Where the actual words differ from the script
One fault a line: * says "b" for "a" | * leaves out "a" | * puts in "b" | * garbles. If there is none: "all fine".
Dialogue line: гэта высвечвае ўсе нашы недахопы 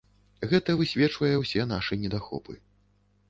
all fine